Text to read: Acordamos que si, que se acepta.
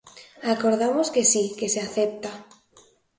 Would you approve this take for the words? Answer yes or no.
yes